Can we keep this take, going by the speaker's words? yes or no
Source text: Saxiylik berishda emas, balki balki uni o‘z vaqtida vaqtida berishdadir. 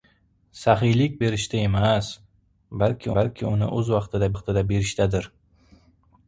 yes